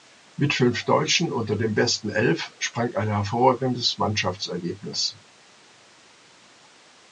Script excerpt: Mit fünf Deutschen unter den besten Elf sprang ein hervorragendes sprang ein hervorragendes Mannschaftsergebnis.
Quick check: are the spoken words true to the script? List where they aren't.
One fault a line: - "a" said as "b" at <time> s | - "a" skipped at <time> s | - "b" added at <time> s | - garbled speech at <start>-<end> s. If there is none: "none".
- "sprang ein hervorragendes" skipped at 4.0 s